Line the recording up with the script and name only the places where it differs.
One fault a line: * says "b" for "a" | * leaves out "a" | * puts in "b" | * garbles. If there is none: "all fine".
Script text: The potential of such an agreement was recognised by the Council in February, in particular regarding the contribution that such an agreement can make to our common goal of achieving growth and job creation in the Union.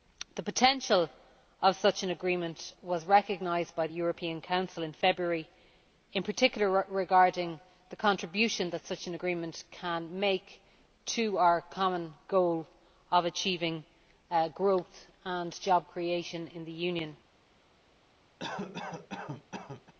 * puts in "European"